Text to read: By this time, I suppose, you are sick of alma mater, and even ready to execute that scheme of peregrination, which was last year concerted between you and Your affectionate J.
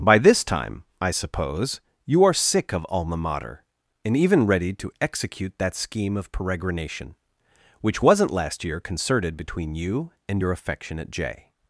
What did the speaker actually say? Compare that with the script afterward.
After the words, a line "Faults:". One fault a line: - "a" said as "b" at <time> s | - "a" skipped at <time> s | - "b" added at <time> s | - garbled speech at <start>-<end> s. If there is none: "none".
By this time, I suppose, you are sick of alma mater, and even ready to execute that scheme of peregrination, which wasn't last year concerted between you and Your affectionate J.
Faults:
- "was" said as "wasn't" at 8.0 s